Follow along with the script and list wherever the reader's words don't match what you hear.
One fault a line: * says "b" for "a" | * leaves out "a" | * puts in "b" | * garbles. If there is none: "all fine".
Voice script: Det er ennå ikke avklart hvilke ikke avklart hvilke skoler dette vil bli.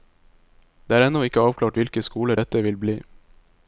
* leaves out "ikke avklart hvilke"